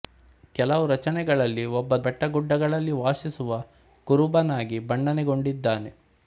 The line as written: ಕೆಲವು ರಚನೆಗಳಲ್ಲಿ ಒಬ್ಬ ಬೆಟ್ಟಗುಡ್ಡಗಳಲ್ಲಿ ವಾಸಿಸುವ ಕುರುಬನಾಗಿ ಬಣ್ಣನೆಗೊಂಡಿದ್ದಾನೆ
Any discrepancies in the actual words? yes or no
no